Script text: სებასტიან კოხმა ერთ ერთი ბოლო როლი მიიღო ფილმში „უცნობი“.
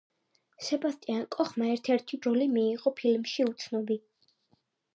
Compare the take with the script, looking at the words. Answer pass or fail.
fail